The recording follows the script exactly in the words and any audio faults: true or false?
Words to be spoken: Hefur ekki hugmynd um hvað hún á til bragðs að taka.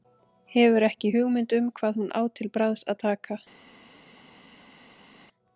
true